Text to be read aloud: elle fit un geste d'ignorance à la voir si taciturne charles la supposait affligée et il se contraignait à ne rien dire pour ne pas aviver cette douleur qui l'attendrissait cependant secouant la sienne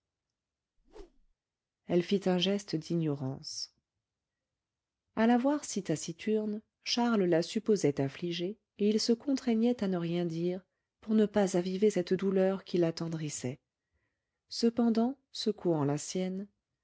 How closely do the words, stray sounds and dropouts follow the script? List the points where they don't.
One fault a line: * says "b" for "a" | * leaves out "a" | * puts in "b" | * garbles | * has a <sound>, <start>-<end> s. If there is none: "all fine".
* has a whoosh, 0.8-1.3 s